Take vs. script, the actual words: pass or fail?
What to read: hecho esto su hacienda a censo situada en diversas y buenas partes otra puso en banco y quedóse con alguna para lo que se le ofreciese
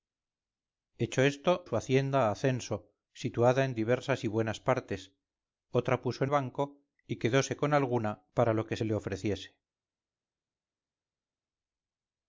pass